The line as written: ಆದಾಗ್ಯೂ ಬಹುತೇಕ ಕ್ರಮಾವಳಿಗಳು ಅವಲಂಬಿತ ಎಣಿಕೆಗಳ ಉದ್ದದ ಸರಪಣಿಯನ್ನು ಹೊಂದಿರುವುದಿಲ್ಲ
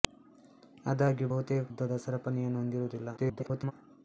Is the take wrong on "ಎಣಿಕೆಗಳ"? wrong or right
wrong